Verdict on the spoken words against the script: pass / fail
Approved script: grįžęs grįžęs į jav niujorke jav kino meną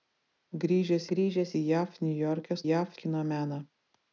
pass